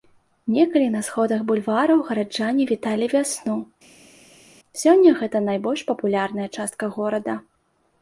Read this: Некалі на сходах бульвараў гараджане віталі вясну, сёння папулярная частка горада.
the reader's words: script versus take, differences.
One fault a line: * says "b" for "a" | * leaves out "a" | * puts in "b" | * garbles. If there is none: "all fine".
* puts in "гэта найбольш"